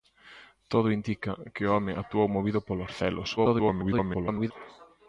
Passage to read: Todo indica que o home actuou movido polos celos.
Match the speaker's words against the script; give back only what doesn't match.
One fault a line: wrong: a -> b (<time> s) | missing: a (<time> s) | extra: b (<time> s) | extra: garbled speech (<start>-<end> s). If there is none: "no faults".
extra: garbled speech (3.4-4.5 s)